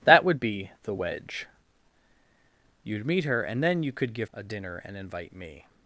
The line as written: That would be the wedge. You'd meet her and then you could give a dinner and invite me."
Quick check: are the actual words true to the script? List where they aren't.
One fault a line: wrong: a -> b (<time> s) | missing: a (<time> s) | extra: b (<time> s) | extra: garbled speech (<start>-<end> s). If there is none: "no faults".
no faults